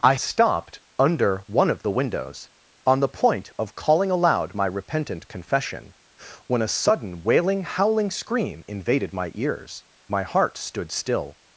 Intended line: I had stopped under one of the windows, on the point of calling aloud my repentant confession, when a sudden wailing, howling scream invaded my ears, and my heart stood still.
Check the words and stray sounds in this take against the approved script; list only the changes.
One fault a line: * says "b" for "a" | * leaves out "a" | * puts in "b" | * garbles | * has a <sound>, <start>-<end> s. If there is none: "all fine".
* leaves out "had"
* leaves out "and"